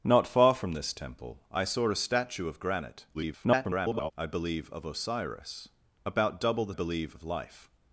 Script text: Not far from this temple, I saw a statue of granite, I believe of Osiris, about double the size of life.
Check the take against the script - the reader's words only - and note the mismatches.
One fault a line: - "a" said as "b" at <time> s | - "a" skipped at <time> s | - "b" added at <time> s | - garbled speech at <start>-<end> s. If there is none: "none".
- garbled speech at 3.1-4.1 s
- "size" said as "believe" at 6.7 s